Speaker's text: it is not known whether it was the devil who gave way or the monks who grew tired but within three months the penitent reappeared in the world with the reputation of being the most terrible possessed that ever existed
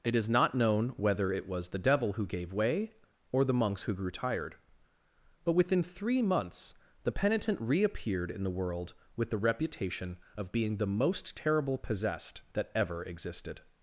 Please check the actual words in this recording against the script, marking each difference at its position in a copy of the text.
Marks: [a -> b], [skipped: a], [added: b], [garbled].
it is not known whether it was the devil who gave way or the monks who grew tired but within three months the penitent reappeared in the world with the reputation of being the most terrible possessed that ever existed